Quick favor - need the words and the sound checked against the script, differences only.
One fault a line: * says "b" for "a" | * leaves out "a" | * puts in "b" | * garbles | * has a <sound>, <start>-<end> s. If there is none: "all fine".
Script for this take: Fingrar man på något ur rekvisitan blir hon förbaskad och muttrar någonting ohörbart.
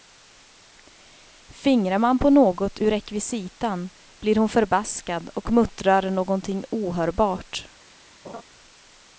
* has a laugh, 8.2-8.4 s